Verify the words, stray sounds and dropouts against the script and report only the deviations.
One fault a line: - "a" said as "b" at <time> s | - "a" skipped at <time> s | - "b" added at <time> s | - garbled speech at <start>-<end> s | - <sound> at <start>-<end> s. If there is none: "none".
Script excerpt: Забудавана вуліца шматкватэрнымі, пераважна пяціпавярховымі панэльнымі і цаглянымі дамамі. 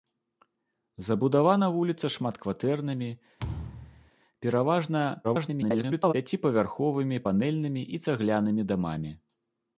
- thud at 3.4-4.1 s
- garbled speech at 5.2-6.1 s